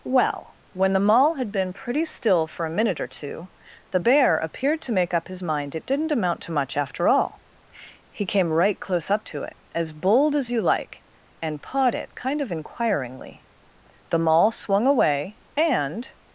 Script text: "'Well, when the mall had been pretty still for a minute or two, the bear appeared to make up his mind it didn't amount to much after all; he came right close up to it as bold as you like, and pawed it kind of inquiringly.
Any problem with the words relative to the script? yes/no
yes